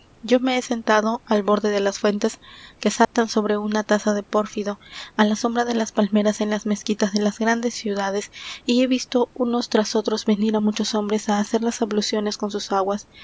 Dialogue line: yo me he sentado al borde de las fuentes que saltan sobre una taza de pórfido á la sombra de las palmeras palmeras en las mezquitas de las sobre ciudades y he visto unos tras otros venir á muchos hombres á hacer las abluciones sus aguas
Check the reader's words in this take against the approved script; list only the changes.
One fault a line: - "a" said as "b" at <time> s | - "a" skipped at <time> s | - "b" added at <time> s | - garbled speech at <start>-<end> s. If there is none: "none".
- "palmeras" skipped at 6.4 s
- "sobre" said as "grandes" at 7.4 s
- "con" added at 12.4 s